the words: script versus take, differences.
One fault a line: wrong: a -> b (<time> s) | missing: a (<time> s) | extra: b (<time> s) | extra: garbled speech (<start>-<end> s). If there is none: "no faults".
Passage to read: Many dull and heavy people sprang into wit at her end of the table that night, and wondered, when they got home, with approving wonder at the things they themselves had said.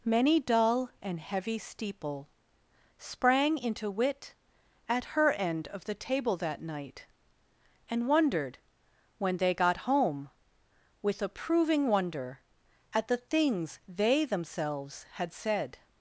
wrong: people -> steeple (1.6 s)